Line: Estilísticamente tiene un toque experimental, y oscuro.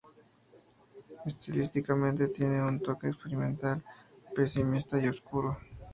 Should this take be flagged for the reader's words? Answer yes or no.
yes